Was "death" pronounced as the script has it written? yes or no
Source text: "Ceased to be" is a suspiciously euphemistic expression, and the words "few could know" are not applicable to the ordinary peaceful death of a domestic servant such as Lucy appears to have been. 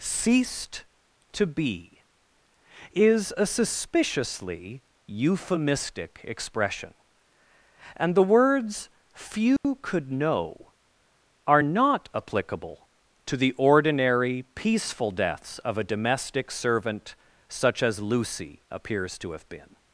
no